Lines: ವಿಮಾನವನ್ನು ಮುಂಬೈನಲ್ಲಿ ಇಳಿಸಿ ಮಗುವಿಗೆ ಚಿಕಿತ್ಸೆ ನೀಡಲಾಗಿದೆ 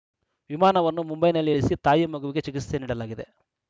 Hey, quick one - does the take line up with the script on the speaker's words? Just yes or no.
no